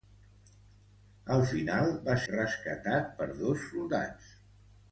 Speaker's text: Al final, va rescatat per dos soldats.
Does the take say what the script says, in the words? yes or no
yes